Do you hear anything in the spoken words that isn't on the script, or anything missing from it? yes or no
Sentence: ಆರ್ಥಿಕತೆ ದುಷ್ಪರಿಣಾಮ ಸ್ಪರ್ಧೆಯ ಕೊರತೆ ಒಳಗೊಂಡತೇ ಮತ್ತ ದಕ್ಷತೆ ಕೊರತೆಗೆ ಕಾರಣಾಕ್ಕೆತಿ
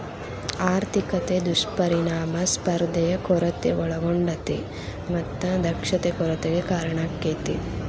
no